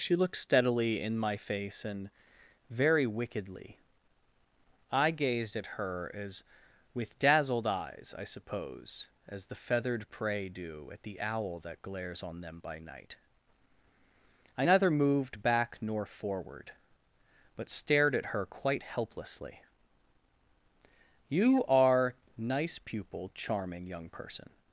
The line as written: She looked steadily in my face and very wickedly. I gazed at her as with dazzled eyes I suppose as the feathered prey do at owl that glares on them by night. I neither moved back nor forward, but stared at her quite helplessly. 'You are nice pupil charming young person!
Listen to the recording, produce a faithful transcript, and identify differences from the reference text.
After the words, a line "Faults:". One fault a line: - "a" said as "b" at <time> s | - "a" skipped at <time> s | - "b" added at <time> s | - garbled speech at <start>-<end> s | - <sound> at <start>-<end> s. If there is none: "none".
She looked steadily in my face and very wickedly. I gazed at her as with dazzled eyes I suppose as the feathered prey do at the owl that glares on them by night. I neither moved back nor forward, but stared at her quite helplessly. 'You are nice pupil charming young person!
Faults:
- "the" added at 11.0 s